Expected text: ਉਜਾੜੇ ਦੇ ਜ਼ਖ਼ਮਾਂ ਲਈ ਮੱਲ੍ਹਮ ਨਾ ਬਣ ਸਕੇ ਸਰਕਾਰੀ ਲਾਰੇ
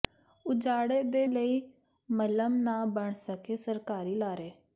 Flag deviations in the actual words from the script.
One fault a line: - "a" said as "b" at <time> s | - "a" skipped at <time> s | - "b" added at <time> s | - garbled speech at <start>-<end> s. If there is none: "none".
- "ਜ਼ਖ਼ਮਾਂ" skipped at 1.3 s